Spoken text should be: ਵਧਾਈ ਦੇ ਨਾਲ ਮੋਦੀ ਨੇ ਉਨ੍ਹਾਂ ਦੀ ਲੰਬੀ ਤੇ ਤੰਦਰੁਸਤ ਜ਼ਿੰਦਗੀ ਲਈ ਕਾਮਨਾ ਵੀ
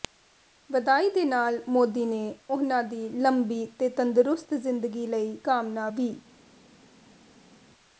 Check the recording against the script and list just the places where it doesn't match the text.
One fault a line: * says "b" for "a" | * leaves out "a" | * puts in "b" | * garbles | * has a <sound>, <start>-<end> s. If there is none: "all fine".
all fine